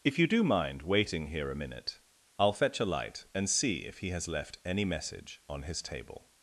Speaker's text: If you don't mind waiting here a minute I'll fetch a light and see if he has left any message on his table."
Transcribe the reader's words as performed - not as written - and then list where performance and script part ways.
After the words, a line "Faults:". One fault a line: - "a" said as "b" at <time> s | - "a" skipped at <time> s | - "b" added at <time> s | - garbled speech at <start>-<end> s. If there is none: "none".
If you do mind waiting here a minute I'll fetch a light and see if he has left any message on his table."
Faults:
- "don't" said as "do" at 0.2 s